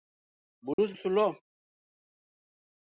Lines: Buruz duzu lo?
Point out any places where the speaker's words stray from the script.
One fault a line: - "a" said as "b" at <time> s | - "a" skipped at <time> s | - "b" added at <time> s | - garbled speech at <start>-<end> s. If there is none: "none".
none